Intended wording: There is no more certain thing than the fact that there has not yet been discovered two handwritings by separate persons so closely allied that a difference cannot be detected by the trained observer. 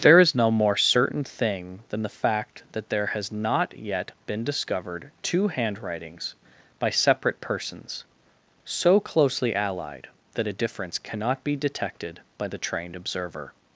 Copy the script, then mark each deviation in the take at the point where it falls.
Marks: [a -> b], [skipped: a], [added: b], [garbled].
There is no more certain thing than the fact that there has not yet been discovered two handwritings by separate persons so closely allied that a difference cannot be detected by the trained observer.